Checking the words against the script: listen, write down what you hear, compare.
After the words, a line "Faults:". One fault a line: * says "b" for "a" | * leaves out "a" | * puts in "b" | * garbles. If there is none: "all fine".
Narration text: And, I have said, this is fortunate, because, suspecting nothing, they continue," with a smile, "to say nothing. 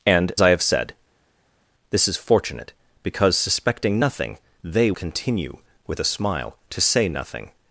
And, I have said, this is fortunate, because, suspecting nothing, they continue," with a smile, "to say nothing.
Faults:
all fine